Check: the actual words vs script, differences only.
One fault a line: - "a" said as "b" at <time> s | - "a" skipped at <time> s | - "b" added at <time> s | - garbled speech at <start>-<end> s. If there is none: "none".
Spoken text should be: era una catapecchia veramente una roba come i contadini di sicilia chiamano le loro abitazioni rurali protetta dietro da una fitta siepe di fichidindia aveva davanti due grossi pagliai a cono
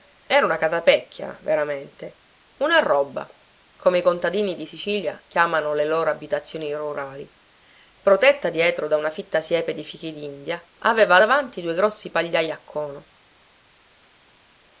none